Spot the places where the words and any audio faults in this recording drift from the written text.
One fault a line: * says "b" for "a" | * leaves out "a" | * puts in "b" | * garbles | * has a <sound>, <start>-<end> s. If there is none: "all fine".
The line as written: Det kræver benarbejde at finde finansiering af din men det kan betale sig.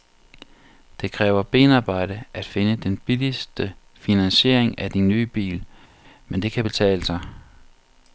* puts in "den billigste"
* puts in "nye bil"